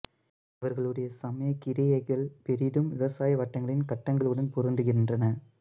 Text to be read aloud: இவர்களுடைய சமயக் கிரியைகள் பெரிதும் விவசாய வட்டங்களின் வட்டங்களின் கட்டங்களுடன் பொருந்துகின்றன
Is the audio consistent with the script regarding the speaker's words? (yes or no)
no